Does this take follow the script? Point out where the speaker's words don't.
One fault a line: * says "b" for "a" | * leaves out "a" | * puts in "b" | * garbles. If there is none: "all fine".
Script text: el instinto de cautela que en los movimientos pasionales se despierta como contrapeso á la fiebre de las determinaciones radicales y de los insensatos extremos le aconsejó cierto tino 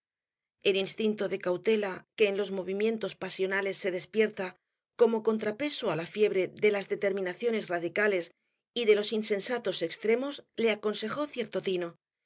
all fine